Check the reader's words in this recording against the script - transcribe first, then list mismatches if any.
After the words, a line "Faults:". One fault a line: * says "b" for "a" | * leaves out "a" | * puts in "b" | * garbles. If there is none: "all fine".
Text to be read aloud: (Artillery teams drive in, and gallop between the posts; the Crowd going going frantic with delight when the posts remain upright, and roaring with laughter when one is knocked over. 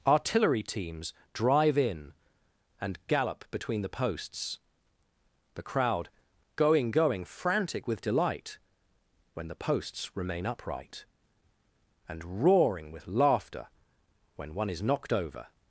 (Artillery teams drive in, and gallop between the posts; the Crowd going going frantic with delight when the posts remain upright, and roaring with laughter when one is knocked over.
Faults:
all fine